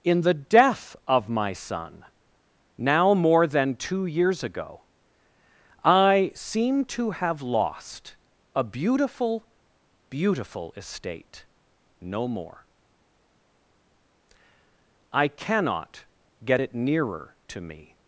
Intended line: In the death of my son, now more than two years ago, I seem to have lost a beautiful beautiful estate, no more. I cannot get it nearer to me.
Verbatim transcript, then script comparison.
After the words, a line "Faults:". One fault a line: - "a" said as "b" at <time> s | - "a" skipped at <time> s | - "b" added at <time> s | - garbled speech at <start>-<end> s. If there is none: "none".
In the death of my son, now more than two years ago, I seem to have lost a beautiful beautiful estate, no more. I cannot get it nearer to me.
Faults:
none